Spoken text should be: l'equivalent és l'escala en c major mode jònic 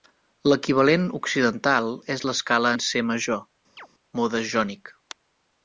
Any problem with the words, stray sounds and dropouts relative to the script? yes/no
yes